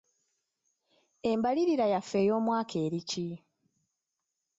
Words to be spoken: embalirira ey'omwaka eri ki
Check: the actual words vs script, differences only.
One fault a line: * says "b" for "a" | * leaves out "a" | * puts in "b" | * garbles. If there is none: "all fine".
* puts in "yaffe"